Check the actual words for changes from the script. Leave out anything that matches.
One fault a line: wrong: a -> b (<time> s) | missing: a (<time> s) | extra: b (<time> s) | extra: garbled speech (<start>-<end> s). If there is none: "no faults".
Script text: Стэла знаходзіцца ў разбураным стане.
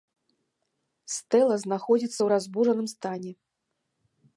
no faults